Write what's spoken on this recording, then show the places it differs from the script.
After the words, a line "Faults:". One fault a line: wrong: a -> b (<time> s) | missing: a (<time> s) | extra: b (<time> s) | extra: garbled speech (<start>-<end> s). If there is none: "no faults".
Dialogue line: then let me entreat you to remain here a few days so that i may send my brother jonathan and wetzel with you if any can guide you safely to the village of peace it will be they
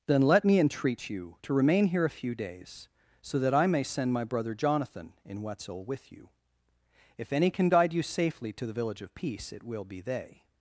then let me entreat you to remain here a few days so that i may send my brother jonathan in wetzel with you if any can guide you safely to the village of peace it will be they
Faults:
wrong: and -> in (5.2 s)